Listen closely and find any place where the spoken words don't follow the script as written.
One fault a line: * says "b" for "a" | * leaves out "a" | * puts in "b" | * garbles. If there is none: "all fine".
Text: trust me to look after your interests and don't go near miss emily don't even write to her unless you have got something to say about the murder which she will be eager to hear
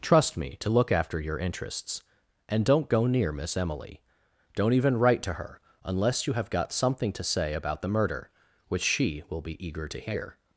all fine